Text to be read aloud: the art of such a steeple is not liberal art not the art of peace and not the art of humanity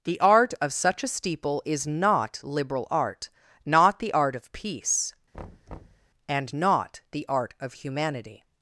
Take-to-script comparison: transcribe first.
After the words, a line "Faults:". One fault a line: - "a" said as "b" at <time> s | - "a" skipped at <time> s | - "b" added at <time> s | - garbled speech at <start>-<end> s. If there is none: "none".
the art of such a steeple is not liberal art not the art of peace and not the art of humanity
Faults:
none